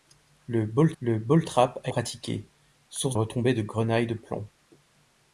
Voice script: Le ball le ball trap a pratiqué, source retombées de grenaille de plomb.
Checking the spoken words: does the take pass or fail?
pass